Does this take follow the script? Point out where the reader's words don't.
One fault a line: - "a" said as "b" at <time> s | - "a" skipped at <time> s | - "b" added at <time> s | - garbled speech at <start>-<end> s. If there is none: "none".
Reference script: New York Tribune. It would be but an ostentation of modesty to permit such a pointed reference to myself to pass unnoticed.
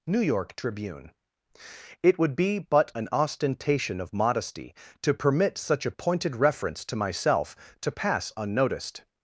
none